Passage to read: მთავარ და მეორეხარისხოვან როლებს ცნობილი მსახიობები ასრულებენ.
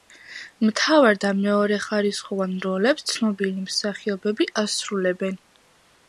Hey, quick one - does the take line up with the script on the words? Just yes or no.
yes